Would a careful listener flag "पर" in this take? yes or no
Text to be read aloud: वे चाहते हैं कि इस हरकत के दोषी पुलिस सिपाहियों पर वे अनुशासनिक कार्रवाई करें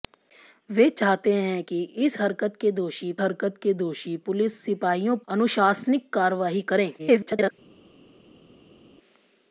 yes